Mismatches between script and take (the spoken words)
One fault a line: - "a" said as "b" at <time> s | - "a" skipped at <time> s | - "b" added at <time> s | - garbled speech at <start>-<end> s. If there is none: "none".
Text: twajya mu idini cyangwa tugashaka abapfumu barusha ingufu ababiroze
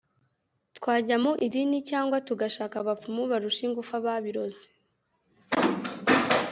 none